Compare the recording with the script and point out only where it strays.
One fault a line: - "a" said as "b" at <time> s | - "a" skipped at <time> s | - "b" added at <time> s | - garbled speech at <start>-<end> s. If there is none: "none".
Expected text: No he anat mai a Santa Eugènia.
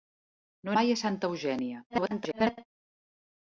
- "anat" skipped at 0.8 s
- garbled speech at 1.9-2.7 s